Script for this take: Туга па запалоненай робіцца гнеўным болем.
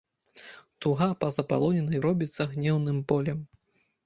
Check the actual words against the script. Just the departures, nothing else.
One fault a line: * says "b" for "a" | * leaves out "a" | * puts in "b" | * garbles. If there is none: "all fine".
all fine